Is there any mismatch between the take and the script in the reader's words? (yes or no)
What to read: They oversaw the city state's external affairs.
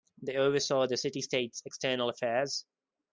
no